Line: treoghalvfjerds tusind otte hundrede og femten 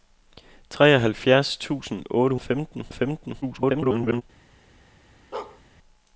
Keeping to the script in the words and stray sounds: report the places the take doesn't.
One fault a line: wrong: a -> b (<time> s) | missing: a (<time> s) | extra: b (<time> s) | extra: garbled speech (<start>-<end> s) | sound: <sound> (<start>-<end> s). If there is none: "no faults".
wrong: hundrede -> femten (2.4 s)
extra: garbled speech (3.4-4.2 s)
sound: bark (5.3-5.6 s)